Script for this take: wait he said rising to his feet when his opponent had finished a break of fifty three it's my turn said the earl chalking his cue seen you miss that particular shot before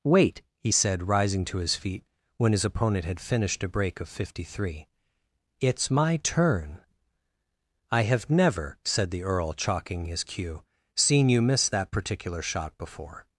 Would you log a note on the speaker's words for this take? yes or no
yes